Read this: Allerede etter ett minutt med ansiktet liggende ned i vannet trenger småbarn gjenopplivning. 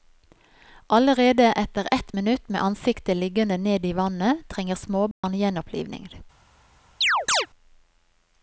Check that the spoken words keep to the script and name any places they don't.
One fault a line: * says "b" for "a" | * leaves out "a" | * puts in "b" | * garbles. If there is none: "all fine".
all fine